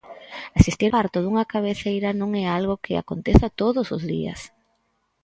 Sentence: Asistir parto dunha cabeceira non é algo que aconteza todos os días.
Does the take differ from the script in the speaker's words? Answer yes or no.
no